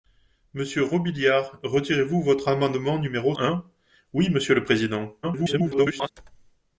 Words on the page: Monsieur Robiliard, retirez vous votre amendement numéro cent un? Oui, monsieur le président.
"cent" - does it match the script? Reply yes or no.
no